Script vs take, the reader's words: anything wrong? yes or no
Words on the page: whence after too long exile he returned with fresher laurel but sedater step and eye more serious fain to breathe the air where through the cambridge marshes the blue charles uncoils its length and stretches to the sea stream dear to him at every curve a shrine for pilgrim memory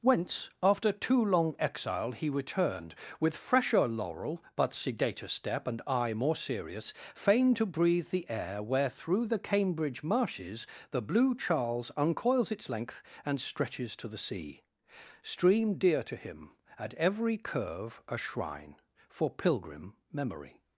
no